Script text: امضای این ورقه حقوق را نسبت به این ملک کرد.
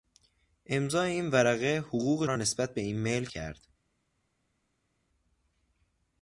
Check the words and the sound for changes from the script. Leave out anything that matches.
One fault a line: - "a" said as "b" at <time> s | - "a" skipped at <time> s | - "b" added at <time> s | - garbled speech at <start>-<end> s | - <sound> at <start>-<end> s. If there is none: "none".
none